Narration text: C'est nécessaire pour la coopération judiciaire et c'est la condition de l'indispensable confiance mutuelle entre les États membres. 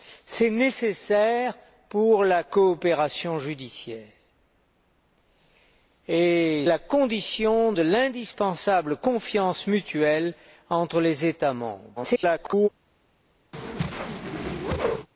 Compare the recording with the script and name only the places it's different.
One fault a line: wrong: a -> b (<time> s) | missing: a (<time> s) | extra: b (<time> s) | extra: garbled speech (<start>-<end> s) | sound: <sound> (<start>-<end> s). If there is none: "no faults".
missing: c'est (6.7 s)
extra: garbled speech (12.0-12.7 s)
sound: whoosh (13.5-15.1 s)